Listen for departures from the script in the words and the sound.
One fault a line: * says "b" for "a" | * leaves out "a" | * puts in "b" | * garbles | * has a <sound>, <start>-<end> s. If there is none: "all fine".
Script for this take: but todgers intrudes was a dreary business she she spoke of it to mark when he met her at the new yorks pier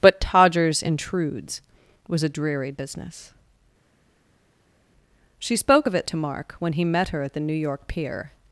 * leaves out "she"
* says "york" for "yorks"